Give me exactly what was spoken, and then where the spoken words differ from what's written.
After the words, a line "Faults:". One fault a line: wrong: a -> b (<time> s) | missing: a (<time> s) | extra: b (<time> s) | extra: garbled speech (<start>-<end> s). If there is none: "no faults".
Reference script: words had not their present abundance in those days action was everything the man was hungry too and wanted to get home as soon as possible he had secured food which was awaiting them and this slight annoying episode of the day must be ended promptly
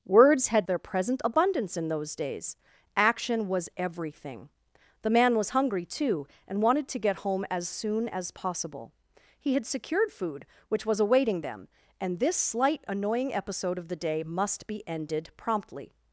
words had their present abundance in those days action was everything the man was hungry too and wanted to get home as soon as possible he had secured food which was awaiting them and this slight annoying episode of the day must be ended promptly
Faults:
missing: not (0.7 s)